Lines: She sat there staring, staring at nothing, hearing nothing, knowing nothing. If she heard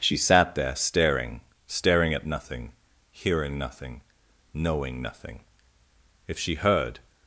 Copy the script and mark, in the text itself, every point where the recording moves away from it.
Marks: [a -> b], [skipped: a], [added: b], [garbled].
She sat there staring, staring at nothing, hearing nothing, knowing nothing. If she heard